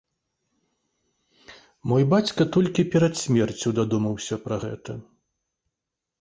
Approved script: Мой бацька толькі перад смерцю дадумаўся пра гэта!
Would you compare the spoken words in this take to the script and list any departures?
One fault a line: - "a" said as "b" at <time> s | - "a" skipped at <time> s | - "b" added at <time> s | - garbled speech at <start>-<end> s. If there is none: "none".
none